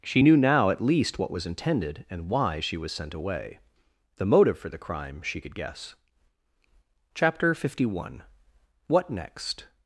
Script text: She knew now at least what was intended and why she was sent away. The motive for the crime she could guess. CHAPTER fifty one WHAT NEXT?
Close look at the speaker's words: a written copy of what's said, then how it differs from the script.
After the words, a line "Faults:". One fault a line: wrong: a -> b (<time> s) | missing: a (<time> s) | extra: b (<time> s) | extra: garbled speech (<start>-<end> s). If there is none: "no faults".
She knew now at least what was intended and why she was sent away. The motive for the crime she could guess. CHAPTER fifty one WHAT NEXT?
Faults:
no faults